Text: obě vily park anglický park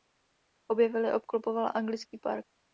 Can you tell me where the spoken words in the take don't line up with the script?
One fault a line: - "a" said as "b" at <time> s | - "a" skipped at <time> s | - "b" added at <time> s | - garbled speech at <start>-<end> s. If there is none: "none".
- "park" said as "obklopoval" at 1.1 s